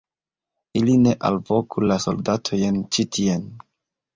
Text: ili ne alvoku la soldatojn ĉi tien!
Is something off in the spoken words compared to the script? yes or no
no